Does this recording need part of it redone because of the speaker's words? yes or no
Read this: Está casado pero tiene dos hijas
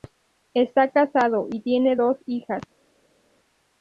yes